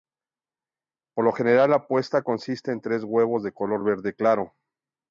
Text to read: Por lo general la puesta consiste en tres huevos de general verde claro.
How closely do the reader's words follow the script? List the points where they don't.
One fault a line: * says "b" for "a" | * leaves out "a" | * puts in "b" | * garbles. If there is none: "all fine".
* says "color" for "general"